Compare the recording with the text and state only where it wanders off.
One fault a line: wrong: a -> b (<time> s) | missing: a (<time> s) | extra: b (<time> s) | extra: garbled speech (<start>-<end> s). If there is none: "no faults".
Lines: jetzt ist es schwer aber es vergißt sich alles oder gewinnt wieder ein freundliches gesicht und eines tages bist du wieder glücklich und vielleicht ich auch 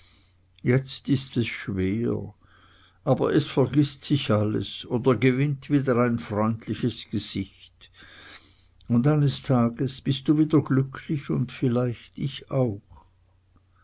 no faults